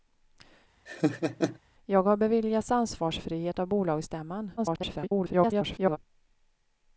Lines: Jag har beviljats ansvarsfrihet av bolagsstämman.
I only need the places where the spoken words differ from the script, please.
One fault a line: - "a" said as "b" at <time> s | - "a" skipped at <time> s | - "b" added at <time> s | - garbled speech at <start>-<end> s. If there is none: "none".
- garbled speech at 4.6-6.0 s